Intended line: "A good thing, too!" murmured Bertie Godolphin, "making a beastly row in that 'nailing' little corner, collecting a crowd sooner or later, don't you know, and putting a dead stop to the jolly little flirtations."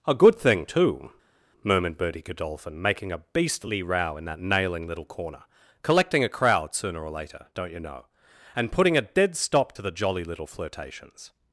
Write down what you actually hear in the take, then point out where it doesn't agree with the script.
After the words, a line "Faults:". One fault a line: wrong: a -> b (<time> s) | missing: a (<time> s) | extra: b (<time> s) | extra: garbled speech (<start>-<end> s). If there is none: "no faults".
"A good thing, too!" murmured Bertie Godolphin, "making a beastly row in that 'nailing' little corner, collecting a crowd sooner or later, don't you know, and putting a dead stop to the jolly little flirtations."
Faults:
no faults